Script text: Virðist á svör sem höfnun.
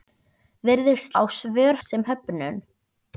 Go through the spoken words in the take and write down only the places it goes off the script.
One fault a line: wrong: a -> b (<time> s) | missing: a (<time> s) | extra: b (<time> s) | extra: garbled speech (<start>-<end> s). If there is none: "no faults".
no faults